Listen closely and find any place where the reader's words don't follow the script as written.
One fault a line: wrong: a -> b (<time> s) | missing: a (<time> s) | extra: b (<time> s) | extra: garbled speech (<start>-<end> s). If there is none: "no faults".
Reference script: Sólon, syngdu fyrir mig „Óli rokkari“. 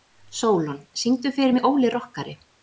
no faults